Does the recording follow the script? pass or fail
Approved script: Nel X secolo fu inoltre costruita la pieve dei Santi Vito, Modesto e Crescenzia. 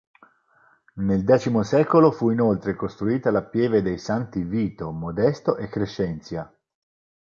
pass